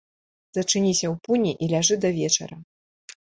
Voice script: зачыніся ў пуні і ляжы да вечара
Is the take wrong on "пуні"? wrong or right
right